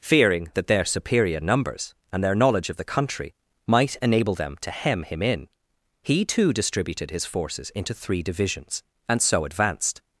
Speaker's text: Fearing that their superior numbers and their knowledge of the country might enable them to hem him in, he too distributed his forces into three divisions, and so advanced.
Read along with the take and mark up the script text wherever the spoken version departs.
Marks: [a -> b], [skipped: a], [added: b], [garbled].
Fearing that their superior numbers and their knowledge of the country might enable them to hem him in, he too distributed his forces into three divisions, and so advanced.